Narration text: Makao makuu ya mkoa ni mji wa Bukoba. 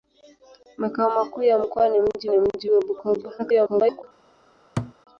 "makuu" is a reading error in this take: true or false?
false